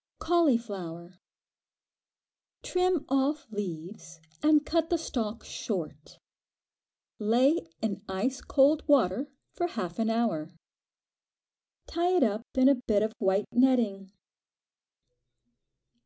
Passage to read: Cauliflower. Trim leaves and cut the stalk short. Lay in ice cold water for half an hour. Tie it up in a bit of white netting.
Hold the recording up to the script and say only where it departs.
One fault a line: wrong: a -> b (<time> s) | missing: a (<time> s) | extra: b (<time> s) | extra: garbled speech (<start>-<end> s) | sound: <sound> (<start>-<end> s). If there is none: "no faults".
extra: off (3.1 s)